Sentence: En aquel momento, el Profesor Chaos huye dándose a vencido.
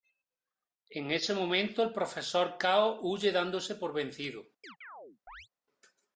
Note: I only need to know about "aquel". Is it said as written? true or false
false